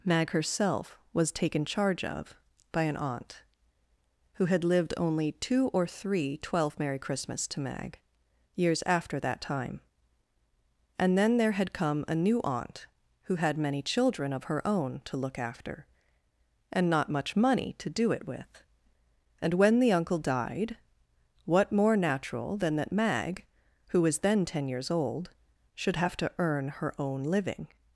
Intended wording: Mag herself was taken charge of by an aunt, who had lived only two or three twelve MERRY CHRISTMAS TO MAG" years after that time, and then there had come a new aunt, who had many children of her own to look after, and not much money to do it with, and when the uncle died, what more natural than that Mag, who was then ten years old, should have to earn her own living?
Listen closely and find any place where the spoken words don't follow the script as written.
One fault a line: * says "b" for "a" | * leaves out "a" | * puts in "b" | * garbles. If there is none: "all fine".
all fine